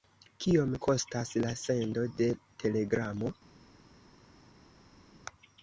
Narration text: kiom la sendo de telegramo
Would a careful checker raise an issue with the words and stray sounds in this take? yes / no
yes